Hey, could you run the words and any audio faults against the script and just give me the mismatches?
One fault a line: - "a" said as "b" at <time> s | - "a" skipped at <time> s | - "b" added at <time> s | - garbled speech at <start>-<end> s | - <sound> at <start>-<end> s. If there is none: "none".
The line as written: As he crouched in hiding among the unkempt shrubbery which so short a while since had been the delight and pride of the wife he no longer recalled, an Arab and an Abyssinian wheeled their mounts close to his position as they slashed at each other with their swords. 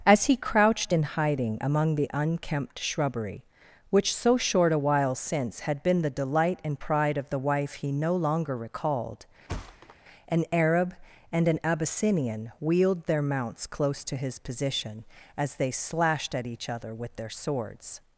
- thud at 9.5-10.0 s